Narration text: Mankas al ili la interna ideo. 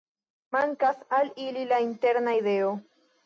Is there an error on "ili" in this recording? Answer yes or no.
no